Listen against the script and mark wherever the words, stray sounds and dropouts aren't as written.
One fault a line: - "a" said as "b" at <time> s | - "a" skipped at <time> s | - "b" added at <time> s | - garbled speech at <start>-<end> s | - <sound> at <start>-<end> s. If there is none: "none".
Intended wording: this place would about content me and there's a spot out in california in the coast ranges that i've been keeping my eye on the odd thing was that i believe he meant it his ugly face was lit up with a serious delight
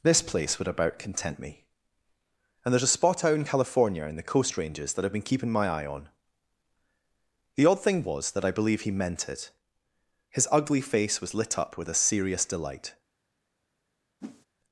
- whoosh at 14.2-14.5 s